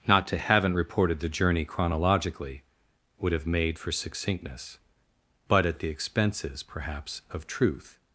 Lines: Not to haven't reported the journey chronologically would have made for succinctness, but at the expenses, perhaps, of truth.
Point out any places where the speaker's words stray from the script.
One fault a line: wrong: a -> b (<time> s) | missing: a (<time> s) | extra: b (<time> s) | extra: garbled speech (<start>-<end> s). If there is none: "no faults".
no faults